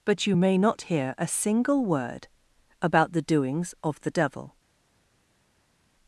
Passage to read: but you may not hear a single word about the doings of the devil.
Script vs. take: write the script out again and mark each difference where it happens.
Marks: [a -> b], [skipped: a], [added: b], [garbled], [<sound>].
but you may not hear a single word about the doings of the devil.